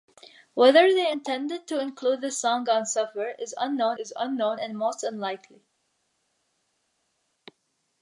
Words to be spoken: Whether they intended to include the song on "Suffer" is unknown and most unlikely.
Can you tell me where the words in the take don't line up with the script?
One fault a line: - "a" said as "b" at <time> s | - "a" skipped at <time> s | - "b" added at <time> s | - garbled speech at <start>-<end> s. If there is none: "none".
- "is unknown" added at 3.9 s